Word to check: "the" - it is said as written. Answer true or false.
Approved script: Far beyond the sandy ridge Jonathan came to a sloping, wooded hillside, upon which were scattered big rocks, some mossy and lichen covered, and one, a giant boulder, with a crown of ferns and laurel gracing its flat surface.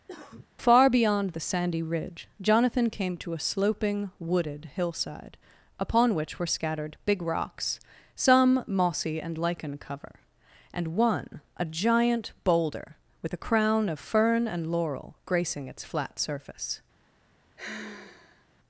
true